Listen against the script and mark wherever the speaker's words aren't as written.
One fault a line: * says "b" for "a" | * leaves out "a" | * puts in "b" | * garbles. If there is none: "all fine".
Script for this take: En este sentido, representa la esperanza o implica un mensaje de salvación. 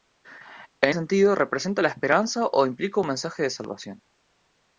* leaves out "este"